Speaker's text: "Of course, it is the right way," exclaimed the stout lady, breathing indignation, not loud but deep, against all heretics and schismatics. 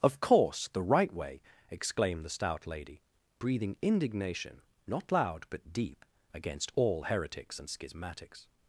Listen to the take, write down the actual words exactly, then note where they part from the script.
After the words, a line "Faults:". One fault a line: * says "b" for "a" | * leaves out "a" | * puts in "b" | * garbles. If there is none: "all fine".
"Of course, the right way," exclaimed the stout lady, breathing indignation, not loud but deep, against all heretics and schismatics.
Faults:
* leaves out "it is"